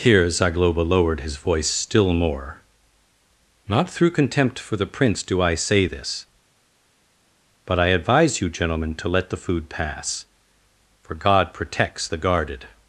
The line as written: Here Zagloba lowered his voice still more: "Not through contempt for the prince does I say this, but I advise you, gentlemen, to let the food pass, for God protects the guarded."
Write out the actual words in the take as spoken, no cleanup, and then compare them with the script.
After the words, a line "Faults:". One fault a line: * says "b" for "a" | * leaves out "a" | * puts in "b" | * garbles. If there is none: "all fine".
Here Zagloba lowered his voice still more: "Not through contempt for the prince do I say this, but I advise you, gentlemen, to let the food pass, for God protects the guarded."
Faults:
* says "do" for "does"